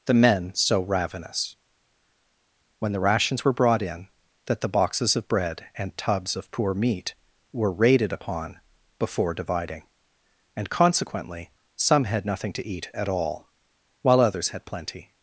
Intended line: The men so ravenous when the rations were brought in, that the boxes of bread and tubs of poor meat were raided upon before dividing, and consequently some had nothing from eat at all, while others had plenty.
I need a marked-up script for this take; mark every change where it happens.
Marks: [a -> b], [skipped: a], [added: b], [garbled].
The men so ravenous when the rations were brought in, that the boxes of bread and tubs of poor meat were raided upon before dividing, and consequently some had nothing [from -> to] eat at all, while others had plenty.